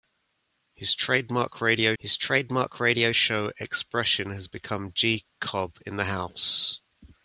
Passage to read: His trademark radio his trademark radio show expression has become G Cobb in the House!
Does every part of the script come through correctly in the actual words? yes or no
yes